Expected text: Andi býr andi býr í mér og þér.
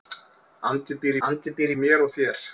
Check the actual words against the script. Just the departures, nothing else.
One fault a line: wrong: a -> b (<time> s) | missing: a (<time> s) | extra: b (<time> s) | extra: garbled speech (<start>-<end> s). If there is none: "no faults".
no faults